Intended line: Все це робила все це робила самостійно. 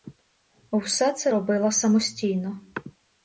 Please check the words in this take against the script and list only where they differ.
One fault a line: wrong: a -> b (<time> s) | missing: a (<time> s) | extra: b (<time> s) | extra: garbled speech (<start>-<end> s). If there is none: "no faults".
missing: все це робила (1.7 s)